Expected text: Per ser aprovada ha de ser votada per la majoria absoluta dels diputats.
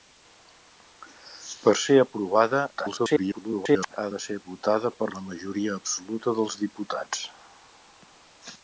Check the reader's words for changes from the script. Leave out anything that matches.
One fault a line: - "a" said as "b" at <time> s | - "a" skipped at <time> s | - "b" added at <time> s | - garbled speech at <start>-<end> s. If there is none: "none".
- garbled speech at 2.8-4.0 s